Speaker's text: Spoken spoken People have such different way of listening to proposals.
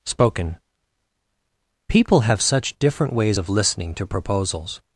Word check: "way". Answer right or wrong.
wrong